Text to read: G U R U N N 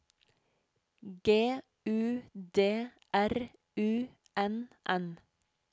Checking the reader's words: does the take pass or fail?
fail